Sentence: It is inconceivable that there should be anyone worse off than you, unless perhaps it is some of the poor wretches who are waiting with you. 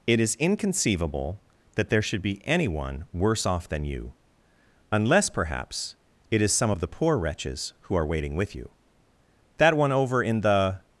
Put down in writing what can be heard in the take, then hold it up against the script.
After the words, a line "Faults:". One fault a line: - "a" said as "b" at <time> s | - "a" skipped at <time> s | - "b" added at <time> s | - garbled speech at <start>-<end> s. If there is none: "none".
It is inconceivable that there should be anyone worse off than you, unless perhaps it is some of the poor wretches who are waiting with you. That one over in the
Faults:
- "That one over in the" added at 9.6 s